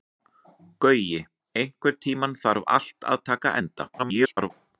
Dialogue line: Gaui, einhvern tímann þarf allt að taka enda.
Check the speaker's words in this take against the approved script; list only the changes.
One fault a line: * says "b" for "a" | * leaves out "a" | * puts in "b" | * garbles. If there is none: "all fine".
* garbles